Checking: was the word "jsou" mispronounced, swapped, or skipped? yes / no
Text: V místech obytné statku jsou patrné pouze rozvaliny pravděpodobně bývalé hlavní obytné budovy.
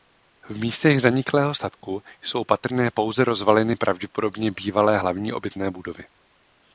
no